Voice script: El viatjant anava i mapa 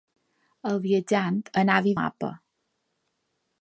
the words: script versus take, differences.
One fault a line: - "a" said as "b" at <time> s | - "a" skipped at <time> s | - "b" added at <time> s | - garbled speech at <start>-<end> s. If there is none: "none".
none